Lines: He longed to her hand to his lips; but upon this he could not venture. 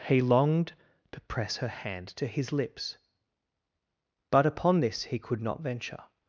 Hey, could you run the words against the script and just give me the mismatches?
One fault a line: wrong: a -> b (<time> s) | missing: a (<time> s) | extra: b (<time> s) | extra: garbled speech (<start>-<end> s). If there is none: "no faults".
extra: press (1.2 s)